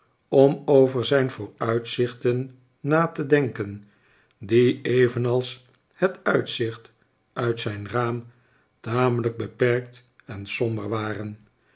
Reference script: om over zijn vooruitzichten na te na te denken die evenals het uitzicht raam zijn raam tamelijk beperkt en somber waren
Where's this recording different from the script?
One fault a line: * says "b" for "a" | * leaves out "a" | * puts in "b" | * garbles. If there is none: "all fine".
* leaves out "na te"
* says "uit" for "raam"